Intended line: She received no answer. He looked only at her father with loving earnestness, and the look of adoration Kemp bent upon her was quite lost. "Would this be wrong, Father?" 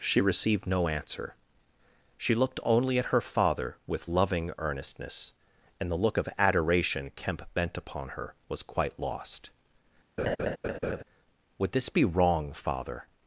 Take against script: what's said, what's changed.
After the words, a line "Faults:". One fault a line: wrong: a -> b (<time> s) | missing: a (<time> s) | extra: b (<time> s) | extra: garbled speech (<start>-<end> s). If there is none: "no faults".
She received no answer. She looked only at her father with loving earnestness, and the look of adoration Kemp bent upon her was quite lost. "Would this be wrong, Father?"
Faults:
wrong: He -> She (2.2 s)